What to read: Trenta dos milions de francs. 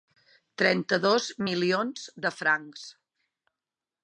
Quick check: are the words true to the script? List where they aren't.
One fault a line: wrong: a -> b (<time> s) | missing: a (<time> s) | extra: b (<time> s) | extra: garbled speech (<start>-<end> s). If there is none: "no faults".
no faults